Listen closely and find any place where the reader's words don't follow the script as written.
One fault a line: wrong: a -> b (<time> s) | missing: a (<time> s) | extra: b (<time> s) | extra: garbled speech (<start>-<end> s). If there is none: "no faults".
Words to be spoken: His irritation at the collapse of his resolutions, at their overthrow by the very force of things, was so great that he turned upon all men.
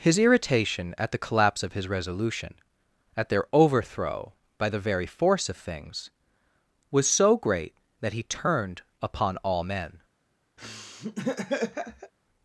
wrong: resolutions -> resolution (1.9 s)